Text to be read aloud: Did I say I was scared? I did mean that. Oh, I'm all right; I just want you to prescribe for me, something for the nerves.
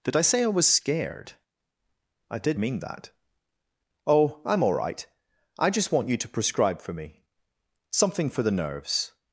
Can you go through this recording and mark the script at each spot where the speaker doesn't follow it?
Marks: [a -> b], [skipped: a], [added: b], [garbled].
Did I say I was scared? I did mean that. Oh, I'm all right; I just want you to prescribe for me, something for the nerves.